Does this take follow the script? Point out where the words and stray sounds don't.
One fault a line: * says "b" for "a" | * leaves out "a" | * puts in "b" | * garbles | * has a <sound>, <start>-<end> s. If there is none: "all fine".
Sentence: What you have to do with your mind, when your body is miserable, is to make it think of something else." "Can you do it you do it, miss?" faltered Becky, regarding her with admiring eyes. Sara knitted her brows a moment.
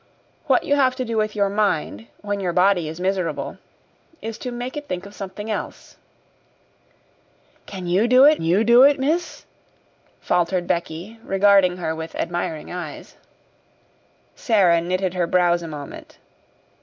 all fine